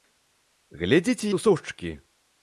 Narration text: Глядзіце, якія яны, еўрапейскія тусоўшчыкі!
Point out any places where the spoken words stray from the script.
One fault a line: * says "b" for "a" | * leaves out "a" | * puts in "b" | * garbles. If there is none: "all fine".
* leaves out "якія яны еўрапейскія"